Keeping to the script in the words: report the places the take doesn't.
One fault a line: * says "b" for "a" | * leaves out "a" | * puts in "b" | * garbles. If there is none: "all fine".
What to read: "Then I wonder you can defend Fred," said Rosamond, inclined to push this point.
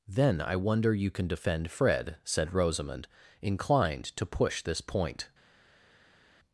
all fine